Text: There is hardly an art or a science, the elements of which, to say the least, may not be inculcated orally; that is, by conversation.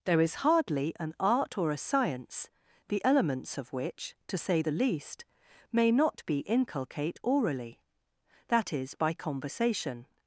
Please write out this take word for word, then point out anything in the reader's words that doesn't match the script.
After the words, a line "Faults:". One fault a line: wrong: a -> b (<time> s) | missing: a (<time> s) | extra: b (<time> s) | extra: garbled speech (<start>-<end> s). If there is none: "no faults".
There is hardly an art or a science, the elements of which, to say the least, may not be inculcate orally; that is, by conversation.
Faults:
wrong: inculcated -> inculcate (6.4 s)